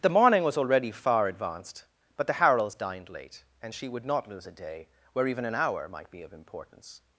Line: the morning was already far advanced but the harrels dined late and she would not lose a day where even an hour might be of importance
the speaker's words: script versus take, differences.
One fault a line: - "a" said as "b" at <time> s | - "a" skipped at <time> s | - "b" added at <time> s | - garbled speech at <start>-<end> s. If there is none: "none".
none